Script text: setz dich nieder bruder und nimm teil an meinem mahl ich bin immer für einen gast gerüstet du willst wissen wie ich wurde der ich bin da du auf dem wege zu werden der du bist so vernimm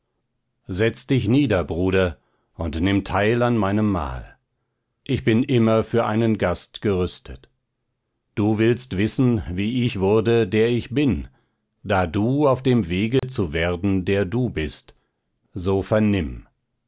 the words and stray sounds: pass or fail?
fail